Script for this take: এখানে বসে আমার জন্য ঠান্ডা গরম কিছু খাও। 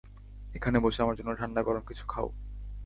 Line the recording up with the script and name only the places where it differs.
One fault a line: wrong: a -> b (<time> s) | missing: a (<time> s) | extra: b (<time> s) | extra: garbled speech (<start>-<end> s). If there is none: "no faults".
no faults